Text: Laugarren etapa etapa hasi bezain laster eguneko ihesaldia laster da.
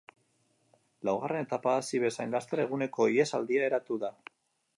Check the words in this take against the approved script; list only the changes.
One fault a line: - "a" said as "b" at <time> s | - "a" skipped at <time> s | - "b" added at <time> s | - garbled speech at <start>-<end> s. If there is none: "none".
- "etapa" skipped at 1.8 s
- "laster" said as "eratu" at 3.7 s